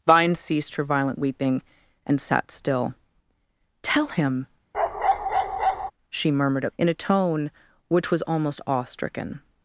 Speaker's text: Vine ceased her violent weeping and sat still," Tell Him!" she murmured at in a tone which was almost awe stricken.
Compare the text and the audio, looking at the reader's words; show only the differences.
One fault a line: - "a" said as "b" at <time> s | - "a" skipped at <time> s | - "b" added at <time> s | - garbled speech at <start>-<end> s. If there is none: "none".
none